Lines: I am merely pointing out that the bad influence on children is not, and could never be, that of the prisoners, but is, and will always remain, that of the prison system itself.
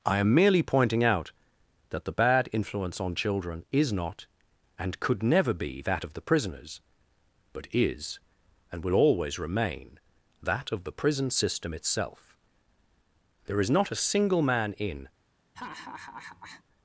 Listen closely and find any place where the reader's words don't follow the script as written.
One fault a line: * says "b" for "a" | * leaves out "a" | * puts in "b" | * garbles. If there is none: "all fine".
* puts in "There is not a single man in"